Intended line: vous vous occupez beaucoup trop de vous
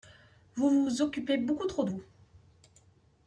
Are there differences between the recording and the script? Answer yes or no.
no